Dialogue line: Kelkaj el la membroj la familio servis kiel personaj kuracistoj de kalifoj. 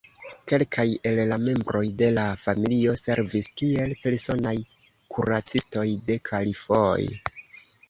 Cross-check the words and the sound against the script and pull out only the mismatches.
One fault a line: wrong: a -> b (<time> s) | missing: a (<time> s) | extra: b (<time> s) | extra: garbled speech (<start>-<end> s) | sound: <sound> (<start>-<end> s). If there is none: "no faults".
extra: de (2.0 s)